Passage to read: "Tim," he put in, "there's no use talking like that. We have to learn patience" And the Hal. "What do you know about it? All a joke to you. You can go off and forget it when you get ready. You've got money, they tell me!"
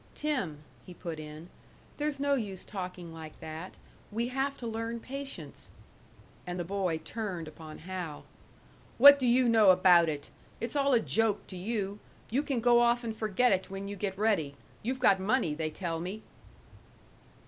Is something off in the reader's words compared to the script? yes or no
yes